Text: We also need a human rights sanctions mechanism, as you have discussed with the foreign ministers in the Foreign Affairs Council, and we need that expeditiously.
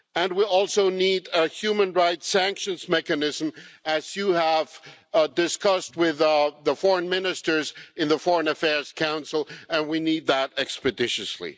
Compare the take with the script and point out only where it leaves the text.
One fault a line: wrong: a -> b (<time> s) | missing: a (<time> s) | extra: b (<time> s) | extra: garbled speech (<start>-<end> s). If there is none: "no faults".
no faults